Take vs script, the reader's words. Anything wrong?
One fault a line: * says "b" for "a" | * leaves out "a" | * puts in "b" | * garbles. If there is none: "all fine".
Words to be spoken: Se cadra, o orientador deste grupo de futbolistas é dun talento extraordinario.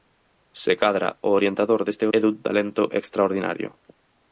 * leaves out "grupo de futbolistas"